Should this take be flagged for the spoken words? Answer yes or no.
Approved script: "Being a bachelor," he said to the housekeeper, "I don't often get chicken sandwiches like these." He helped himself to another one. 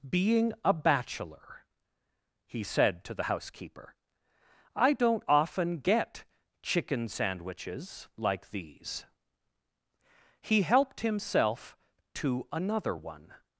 no